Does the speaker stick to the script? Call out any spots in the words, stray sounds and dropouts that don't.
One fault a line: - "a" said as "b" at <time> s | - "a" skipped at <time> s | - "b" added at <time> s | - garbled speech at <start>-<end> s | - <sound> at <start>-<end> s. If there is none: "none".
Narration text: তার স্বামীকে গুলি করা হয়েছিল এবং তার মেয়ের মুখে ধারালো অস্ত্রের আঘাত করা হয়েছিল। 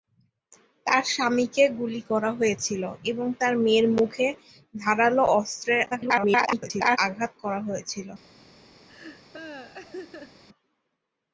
- garbled speech at 5.9-7.0 s
- laugh at 8.9-10.4 s